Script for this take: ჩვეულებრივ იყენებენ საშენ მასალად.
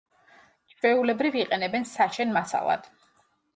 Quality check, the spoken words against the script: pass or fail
pass